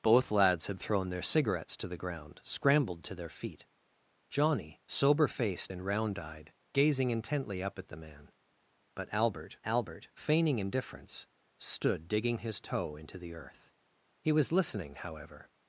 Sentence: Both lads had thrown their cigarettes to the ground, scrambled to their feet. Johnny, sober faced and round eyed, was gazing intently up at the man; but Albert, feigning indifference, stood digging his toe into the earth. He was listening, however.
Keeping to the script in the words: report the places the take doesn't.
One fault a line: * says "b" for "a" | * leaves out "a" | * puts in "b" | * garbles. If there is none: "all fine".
* leaves out "was"
* puts in "Albert"